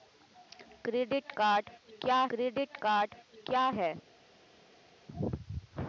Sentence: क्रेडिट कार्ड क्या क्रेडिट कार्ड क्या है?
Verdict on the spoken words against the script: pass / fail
pass